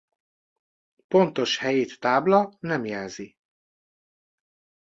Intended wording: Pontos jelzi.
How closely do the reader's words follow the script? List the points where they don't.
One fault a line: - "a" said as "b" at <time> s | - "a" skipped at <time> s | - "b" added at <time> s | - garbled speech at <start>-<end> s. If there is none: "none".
- "helyét tábla nem" added at 1.6 s